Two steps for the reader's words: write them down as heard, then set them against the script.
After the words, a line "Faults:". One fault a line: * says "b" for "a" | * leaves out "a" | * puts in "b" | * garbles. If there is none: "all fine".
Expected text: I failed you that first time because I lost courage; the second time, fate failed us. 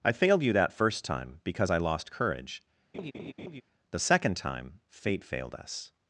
I failed you that first time because I lost courage; the second time, fate failed us.
Faults:
all fine